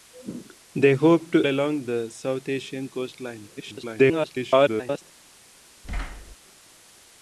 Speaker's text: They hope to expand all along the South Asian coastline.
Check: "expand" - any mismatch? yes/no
yes